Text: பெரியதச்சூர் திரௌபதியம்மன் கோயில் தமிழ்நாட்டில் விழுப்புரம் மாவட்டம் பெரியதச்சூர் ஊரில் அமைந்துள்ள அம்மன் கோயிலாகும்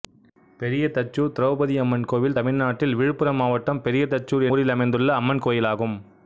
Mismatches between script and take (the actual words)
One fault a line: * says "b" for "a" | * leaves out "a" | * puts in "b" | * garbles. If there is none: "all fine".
all fine